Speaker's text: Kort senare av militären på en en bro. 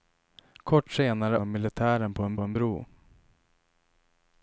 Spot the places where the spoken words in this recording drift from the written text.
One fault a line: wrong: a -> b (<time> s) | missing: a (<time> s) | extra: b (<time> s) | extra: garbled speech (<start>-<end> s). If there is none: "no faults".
no faults